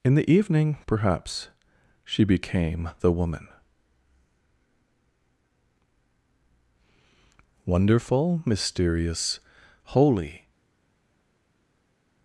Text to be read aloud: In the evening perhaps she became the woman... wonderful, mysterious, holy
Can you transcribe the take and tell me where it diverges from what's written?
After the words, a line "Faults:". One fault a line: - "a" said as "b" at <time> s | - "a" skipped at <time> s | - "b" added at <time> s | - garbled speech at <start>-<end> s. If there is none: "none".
In the evening perhaps she became the woman... wonderful, mysterious, holy
Faults:
none